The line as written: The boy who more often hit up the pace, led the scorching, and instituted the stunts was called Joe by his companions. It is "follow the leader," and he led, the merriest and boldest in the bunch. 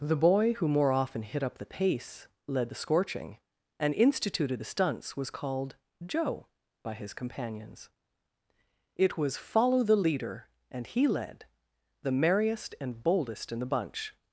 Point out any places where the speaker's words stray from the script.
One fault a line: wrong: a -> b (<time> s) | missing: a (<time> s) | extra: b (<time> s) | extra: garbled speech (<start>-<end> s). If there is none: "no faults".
wrong: is -> was (9.2 s)